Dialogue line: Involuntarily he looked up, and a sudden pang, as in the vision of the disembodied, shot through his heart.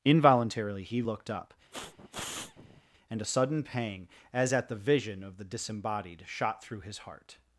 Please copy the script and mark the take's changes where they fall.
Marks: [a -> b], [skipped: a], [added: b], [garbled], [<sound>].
Involuntarily he looked up, [sniff] and a sudden pang, as [in -> at] the vision of the disembodied, shot through his heart.